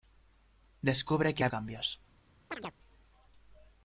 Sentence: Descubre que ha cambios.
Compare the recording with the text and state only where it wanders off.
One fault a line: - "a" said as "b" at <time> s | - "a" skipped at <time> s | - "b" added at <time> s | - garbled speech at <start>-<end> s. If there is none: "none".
none